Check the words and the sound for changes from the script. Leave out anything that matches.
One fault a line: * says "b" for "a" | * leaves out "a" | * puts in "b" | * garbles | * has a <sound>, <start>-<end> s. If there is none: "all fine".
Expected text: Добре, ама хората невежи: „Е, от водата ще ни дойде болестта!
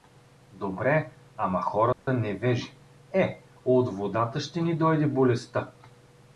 * has a dropout, 1.9-2.1 s